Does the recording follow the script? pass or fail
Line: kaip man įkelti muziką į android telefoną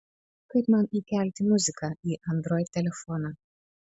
pass